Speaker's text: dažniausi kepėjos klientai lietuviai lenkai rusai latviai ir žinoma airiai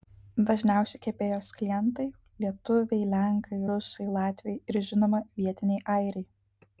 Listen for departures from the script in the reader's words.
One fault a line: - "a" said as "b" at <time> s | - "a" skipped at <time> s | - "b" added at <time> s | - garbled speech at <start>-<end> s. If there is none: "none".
- "vietiniai" added at 5.4 s